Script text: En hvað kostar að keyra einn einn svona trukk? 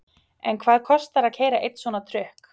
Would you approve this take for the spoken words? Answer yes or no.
no